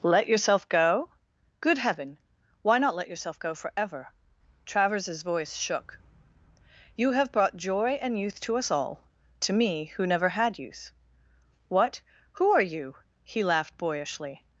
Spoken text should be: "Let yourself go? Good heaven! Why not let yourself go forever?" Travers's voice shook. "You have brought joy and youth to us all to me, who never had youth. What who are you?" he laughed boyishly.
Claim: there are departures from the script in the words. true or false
false